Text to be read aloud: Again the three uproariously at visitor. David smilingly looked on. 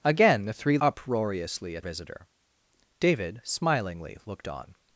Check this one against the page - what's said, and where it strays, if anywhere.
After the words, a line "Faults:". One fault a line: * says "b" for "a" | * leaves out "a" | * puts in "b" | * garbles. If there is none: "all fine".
Again the three uproariously at visitor. David smilingly looked on.
Faults:
all fine